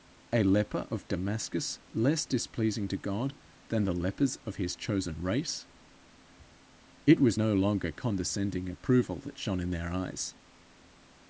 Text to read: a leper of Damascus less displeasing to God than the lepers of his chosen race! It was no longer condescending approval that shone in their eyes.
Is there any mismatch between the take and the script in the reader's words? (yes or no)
no